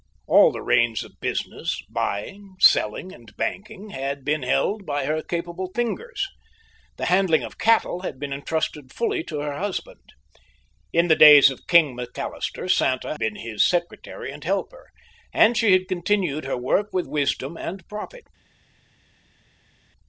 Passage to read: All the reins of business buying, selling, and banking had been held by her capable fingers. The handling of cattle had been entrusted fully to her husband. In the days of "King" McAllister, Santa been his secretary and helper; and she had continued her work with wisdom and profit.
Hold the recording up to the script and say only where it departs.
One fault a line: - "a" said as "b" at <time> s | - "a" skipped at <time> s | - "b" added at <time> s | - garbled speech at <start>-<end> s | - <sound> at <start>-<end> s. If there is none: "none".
none